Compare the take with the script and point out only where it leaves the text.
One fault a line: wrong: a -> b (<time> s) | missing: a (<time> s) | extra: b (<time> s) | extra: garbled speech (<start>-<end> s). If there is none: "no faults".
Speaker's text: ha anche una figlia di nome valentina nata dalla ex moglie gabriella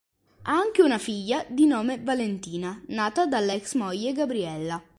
no faults